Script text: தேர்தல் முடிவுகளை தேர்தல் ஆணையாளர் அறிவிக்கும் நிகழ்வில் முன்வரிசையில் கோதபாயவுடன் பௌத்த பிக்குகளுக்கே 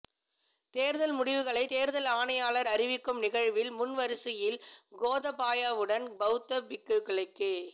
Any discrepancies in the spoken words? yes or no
no